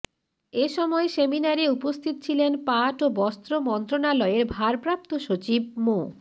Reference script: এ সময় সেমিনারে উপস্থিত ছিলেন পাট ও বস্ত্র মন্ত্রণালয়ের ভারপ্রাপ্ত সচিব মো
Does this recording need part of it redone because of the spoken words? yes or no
no